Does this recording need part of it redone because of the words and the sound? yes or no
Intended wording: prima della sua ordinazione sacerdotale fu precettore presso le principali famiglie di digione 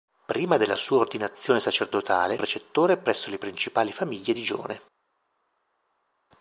yes